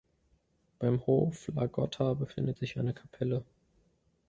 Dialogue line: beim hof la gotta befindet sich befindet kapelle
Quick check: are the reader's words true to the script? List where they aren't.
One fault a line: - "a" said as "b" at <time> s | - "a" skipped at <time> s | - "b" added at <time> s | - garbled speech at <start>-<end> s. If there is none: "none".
- "befindet" said as "eine" at 2.8 s